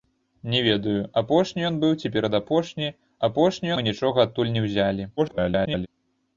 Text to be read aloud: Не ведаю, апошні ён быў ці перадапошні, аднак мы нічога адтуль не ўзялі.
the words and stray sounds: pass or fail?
fail